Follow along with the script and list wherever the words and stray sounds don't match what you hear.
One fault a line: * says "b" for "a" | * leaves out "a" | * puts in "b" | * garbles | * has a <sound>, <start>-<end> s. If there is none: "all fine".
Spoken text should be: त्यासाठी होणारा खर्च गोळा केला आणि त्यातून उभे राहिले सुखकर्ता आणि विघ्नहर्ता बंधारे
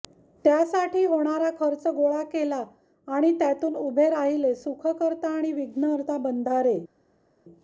all fine